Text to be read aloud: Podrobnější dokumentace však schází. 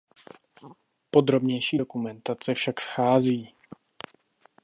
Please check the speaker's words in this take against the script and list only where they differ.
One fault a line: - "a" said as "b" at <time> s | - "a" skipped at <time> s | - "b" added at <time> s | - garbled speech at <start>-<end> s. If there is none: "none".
none